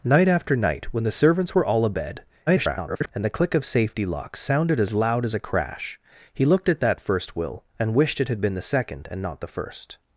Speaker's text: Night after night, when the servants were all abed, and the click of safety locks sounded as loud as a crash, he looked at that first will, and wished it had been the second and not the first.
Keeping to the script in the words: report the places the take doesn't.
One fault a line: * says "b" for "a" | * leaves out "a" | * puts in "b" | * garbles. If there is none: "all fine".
* garbles